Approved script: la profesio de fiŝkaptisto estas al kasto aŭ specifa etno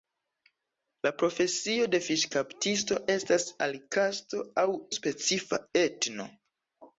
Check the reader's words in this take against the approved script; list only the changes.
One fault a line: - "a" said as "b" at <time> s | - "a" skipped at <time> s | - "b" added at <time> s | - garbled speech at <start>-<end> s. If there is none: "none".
none